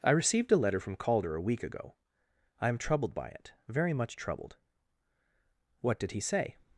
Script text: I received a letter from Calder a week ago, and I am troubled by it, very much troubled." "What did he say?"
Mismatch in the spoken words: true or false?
true